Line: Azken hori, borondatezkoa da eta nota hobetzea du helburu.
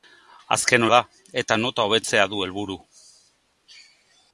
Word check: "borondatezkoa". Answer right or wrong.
wrong